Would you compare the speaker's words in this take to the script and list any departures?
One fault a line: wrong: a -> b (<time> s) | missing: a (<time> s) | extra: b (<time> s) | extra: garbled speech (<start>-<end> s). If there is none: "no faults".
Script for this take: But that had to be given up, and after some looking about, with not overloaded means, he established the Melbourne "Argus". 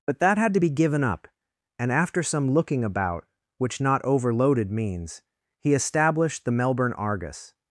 wrong: with -> which (3.6 s)